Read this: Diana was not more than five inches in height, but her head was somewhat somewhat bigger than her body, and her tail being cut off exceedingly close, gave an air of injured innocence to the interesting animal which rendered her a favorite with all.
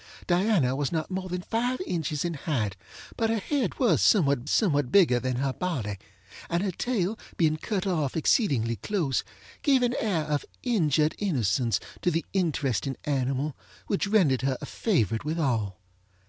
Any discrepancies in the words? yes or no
no